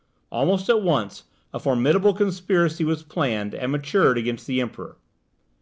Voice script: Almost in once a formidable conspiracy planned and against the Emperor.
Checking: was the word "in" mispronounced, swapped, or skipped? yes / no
yes